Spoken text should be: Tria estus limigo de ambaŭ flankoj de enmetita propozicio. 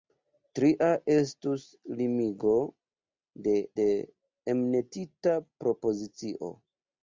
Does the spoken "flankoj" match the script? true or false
false